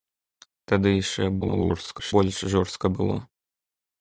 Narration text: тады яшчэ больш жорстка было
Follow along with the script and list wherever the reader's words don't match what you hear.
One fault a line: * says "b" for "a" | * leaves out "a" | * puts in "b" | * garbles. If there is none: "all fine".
* garbles